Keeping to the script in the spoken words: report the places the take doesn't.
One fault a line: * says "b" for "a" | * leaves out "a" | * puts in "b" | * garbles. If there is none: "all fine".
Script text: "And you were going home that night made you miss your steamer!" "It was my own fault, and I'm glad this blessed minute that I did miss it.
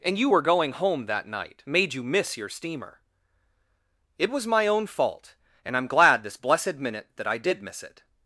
all fine